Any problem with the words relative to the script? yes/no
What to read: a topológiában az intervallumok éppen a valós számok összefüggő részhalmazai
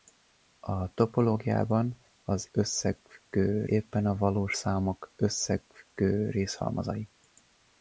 yes